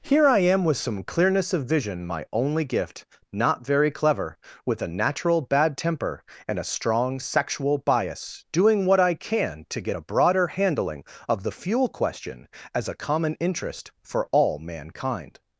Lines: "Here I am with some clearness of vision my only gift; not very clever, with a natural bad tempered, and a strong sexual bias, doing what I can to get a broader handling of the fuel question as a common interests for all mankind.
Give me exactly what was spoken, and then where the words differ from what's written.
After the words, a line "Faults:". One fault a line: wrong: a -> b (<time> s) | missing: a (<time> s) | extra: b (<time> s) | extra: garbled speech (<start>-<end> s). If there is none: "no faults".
"Here I am with some clearness of vision my only gift; not very clever, with a natural bad temper, and a strong sexual bias, doing what I can to get a broader handling of the fuel question as a common interest for all mankind.
Faults:
wrong: tempered -> temper (5.8 s)
wrong: interests -> interest (13.4 s)